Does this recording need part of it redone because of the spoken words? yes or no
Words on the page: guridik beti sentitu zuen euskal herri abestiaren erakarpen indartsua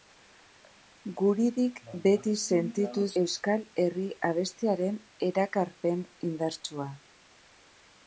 yes